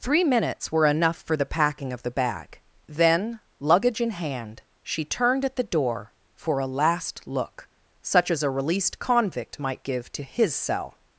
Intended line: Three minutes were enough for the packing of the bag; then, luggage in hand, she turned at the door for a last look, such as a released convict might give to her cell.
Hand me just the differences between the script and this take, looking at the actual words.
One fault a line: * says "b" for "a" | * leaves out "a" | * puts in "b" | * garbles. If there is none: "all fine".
* says "his" for "her"